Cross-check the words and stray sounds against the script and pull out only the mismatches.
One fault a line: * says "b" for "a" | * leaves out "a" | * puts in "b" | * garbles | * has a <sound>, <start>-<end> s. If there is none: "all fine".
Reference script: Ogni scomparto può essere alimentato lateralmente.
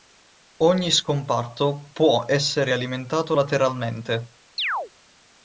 * has a chirp, 4.6-4.9 s